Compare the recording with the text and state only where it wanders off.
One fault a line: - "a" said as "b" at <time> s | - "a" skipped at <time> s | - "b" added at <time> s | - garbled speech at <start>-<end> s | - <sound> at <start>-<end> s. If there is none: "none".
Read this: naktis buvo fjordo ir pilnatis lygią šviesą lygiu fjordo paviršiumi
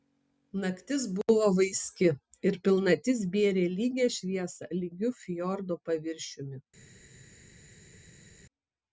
- "fjordo" said as "vaiski" at 1.6 s
- "bėrė" added at 3.3 s